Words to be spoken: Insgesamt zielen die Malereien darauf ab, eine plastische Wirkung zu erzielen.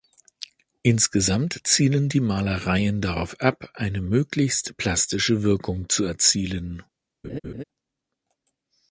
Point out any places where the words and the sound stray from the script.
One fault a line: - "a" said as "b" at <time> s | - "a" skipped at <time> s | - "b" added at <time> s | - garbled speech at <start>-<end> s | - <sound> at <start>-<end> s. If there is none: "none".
- "möglichst" added at 4.0 s
- laugh at 7.2-7.6 s